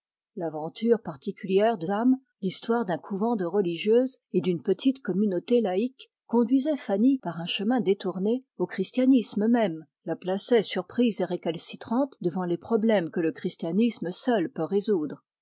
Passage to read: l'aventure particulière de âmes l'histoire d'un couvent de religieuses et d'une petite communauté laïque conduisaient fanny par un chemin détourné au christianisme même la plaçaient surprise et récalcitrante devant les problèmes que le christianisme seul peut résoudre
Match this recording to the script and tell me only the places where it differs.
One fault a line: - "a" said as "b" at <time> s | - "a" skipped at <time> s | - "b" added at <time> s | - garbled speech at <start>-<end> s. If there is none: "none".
none